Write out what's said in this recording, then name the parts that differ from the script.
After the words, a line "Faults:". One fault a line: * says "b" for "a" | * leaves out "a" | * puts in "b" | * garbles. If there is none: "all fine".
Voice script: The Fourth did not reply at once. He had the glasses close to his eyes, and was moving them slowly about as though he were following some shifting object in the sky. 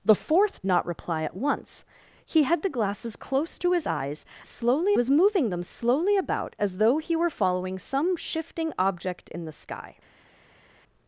The Fourth not reply at once. He had the glasses close to his eyes, slowly was moving them slowly about as though he were following some shifting object in the sky.
Faults:
* leaves out "did"
* says "slowly" for "and"